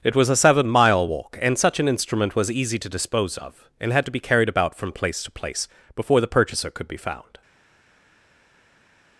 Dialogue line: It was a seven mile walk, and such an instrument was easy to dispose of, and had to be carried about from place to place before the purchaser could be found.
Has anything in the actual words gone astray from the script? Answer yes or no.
no